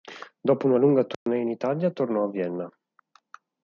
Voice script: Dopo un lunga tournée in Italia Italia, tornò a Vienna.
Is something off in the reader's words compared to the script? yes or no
yes